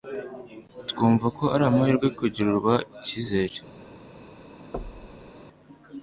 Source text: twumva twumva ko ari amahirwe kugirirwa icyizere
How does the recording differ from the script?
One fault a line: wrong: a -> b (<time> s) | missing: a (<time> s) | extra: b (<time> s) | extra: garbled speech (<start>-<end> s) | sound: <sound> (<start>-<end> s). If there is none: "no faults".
missing: twumva (1.3 s)
sound: thud (4.7-5.3 s)